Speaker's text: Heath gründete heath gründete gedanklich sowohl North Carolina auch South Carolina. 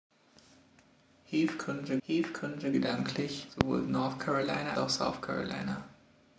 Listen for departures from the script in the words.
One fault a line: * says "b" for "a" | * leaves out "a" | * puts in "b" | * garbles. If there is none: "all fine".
all fine